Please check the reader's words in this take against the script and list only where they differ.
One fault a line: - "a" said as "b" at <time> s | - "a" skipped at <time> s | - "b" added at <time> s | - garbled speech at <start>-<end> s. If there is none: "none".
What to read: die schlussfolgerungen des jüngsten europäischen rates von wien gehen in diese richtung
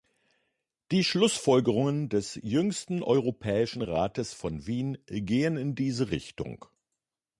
none